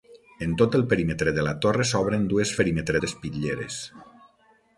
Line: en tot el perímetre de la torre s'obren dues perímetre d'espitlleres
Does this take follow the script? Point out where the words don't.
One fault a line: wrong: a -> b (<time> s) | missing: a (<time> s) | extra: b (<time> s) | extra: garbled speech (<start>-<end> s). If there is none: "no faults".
no faults